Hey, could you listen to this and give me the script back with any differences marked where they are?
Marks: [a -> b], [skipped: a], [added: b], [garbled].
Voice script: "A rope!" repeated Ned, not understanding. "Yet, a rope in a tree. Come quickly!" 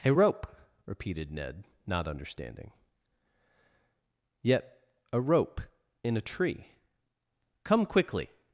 "A rope!" repeated Ned, not understanding. "Yet, a rope in a tree. Come quickly!"